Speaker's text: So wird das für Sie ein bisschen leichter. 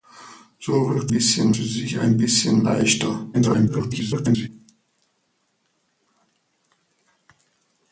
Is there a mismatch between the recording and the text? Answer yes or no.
yes